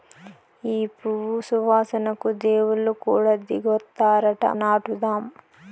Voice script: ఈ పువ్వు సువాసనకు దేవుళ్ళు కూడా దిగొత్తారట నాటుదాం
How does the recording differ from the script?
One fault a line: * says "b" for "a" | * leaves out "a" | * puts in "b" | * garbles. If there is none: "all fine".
all fine